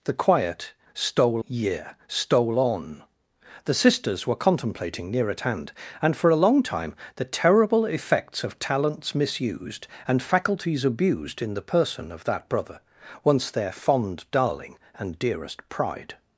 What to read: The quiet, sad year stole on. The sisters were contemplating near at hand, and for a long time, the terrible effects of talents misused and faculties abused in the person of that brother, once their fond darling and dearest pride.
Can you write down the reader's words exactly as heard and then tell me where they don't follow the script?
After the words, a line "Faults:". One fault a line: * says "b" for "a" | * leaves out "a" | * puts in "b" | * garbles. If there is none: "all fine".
The quiet, stole year stole on. The sisters were contemplating near at hand, and for a long time, the terrible effects of talents misused and faculties abused in the person of that brother, once their fond darling and dearest pride.
Faults:
* says "stole" for "sad"